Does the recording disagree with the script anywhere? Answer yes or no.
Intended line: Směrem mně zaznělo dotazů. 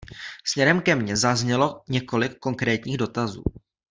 yes